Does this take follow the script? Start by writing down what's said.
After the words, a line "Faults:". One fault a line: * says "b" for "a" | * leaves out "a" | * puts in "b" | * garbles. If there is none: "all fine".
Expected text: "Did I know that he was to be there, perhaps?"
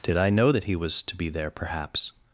"Did I know that he was to be there, perhaps?"
Faults:
all fine